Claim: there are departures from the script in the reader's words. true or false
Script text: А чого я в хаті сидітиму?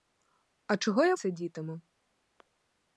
true